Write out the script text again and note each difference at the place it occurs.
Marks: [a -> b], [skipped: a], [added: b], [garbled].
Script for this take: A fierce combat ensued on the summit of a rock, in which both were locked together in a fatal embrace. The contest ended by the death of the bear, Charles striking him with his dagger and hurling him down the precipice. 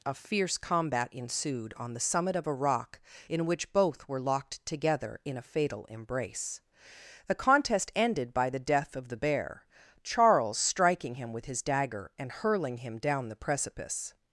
A fierce combat ensued on the summit of a rock, in which both were locked together in a fatal embrace. The contest ended by the death of the bear, Charles striking him with his dagger and hurling him down the precipice.